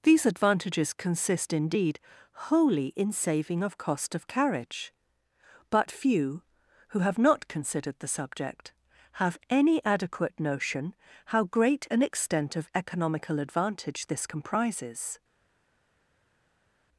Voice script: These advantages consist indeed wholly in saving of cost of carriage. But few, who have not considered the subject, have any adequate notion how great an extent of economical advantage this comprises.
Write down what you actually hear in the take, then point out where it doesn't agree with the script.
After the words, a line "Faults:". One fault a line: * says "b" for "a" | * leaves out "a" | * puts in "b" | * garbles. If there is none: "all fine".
These advantages consist indeed wholly in saving of cost of carriage. But few, who have not considered the subject, have any adequate notion how great an extent of economical advantage this comprises.
Faults:
all fine